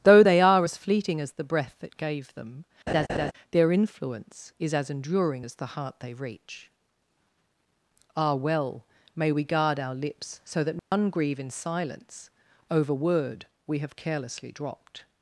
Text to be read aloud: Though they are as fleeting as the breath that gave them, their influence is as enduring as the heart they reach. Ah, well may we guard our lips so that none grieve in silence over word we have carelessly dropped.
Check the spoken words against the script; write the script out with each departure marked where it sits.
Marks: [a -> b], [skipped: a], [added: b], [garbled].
Though they are as fleeting as the breath that gave them, their influence is as enduring as the heart they reach. Ah, well may we guard our lips so that none grieve in silence over word we have carelessly dropped.